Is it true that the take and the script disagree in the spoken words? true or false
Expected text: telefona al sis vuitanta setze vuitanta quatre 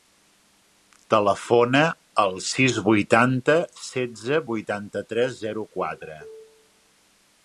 true